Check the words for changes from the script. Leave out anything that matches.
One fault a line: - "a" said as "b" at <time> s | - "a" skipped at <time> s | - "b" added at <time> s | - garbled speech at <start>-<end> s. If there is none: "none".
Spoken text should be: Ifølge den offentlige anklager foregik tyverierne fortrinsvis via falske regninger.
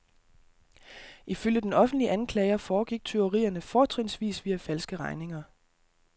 none